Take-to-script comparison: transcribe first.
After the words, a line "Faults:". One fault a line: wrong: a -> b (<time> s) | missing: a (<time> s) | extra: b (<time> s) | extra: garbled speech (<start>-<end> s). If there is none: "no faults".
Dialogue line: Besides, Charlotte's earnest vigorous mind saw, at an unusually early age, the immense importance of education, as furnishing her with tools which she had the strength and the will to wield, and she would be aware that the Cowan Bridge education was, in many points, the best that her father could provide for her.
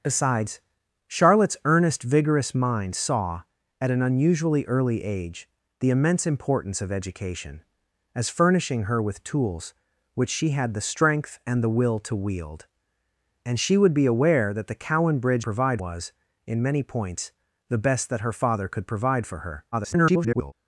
Besides, Charlotte's earnest vigorous mind saw, at an unusually early age, the immense importance of education, as furnishing her with tools which she had the strength and the will to wield, and she would be aware that the Cowan Bridge provide was, in many points, the best that her father could provide for her. [garbled]
Faults:
wrong: education -> provide (15.4 s)
extra: garbled speech (19.7-20.5 s)